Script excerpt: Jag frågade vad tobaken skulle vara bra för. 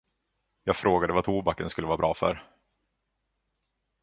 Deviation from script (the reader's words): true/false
false